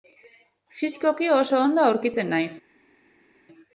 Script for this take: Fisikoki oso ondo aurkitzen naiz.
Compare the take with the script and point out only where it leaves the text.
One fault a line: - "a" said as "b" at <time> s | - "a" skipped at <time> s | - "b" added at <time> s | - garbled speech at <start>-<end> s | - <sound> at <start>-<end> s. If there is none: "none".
none